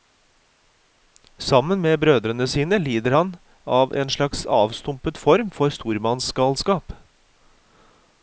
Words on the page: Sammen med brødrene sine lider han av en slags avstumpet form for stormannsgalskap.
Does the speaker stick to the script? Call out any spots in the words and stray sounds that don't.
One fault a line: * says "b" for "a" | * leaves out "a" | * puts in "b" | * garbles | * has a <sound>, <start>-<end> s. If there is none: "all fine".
all fine